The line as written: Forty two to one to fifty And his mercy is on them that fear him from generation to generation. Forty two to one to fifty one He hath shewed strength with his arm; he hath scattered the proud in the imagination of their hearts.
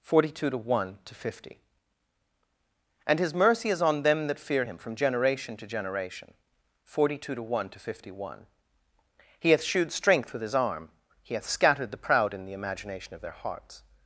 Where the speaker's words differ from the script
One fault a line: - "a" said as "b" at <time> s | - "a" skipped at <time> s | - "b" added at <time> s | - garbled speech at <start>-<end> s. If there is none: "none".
none